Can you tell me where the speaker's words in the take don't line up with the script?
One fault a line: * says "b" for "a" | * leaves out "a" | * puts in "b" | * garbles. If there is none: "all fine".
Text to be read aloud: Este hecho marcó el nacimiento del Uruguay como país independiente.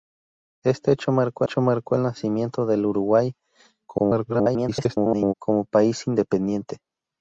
* puts in "hecho marcó"
* garbles